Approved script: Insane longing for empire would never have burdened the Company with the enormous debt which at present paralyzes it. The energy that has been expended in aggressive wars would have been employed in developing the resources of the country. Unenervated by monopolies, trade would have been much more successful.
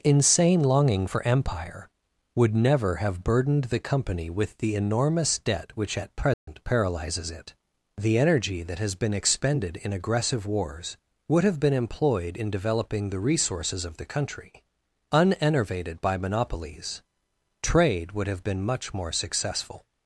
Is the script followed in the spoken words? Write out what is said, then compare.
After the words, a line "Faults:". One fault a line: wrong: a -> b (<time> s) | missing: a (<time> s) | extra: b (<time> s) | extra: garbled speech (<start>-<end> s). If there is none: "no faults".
Insane longing for empire would never have burdened the Company with the enormous debt which at present paralyzes it. The energy that has been expended in aggressive wars would have been employed in developing the resources of the country. Unenervated by monopolies, trade would have been much more successful.
Faults:
no faults